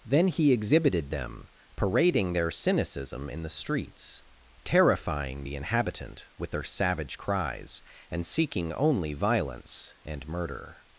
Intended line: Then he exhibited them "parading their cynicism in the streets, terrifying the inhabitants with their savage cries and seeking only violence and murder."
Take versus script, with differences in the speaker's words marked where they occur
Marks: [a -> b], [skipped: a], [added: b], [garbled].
Then he exhibited them "parading their cynicism in the streets, terrifying the [inhabitants -> inhabitant] with their savage cries and seeking only violence and murder."